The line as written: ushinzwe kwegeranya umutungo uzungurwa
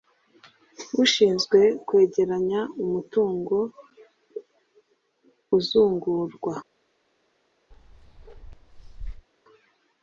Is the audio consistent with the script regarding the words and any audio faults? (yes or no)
no